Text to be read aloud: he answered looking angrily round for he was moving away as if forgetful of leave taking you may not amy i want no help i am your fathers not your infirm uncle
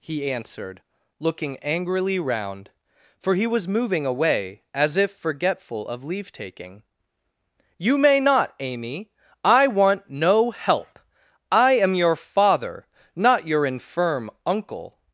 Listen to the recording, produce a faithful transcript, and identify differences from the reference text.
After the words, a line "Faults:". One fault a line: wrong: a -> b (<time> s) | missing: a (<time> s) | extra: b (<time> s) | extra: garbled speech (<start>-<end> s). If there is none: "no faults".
he answered looking angrily round for he was moving away as if forgetful of leave taking you may not amy i want no help i am your father not your infirm uncle
Faults:
wrong: fathers -> father (12.2 s)